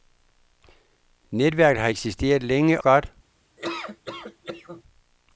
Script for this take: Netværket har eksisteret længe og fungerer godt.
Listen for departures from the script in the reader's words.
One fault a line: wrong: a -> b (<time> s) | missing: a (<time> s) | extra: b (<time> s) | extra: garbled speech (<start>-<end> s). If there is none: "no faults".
missing: og fungerer (2.8 s)